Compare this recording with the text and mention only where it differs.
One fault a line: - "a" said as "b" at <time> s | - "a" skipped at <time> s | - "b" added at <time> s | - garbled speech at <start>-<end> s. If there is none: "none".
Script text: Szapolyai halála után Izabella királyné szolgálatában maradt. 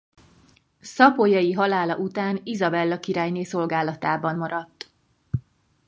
none